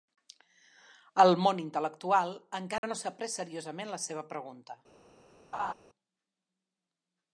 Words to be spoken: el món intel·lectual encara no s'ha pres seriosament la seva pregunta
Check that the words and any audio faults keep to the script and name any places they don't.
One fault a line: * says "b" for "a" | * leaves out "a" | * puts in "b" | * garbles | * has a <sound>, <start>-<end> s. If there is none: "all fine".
* has a dropout, 2.8-2.8 s
* has a laugh, 5.5-5.7 s